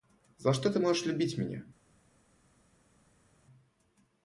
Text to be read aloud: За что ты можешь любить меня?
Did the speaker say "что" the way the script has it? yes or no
yes